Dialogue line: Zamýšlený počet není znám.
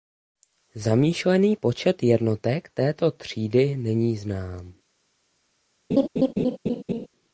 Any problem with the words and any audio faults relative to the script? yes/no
yes